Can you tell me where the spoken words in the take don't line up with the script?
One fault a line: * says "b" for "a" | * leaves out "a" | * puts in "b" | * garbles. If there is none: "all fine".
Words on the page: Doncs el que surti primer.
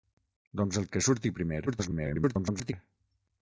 * garbles